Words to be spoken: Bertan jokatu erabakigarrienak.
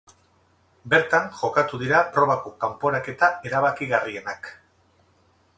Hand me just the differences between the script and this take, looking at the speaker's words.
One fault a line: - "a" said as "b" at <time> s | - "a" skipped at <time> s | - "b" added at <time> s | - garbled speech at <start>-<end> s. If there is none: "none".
- "dira probako kanporaketa" added at 1.8 s